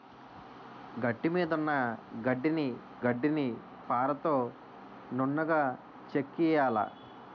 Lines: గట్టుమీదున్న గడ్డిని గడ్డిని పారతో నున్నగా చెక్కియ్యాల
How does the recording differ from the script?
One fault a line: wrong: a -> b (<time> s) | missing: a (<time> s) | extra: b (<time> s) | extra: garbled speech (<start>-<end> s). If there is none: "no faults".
no faults